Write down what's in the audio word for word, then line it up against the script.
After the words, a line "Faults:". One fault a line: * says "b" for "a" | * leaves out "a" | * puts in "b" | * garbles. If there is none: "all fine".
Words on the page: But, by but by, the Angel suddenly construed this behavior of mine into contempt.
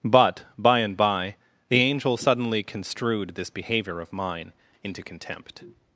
But, by and by, the Angel suddenly construed this behavior of mine into contempt.
Faults:
* says "and" for "but"